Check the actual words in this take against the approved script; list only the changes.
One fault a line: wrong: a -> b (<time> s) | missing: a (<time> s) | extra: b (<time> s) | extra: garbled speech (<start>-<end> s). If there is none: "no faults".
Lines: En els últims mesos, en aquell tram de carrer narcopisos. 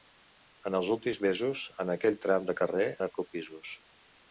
no faults